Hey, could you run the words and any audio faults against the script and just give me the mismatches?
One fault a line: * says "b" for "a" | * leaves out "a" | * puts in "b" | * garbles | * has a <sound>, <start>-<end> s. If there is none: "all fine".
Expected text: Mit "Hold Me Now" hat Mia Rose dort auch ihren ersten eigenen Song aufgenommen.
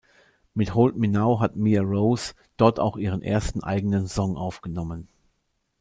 all fine